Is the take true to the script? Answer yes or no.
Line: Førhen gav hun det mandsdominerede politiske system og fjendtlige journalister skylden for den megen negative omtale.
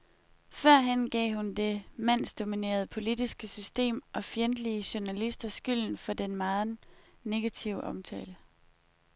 yes